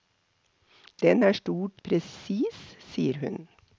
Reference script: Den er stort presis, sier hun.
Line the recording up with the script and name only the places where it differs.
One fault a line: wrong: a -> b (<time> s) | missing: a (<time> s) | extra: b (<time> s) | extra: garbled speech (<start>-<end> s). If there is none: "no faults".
no faults